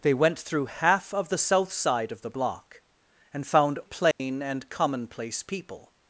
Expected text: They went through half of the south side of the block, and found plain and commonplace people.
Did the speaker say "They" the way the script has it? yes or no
yes